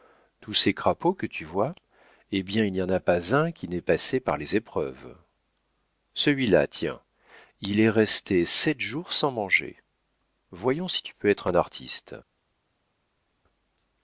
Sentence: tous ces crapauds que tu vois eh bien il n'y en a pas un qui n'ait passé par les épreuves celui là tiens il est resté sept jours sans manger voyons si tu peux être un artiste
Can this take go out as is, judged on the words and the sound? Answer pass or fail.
pass